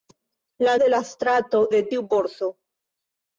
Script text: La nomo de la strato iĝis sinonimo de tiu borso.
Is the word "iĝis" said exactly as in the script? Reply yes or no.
no